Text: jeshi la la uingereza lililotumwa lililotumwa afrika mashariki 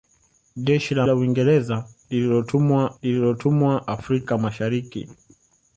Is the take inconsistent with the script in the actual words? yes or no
no